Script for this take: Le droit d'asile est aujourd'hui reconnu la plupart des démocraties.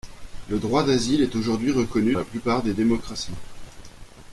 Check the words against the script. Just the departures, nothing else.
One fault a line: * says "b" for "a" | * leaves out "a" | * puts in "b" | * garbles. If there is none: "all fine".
all fine